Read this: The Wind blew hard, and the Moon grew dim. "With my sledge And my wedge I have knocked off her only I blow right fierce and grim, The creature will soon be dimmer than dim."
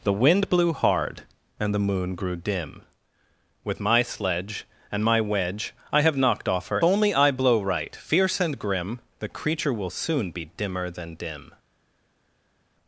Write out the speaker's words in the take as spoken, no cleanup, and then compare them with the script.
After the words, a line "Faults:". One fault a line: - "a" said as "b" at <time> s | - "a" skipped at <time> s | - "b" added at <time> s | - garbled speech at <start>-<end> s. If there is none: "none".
The Wind blew hard, and the Moon grew dim. "With my sledge And my wedge I have knocked off her only I blow right fierce and grim, The creature will soon be dimmer than dim."
Faults:
none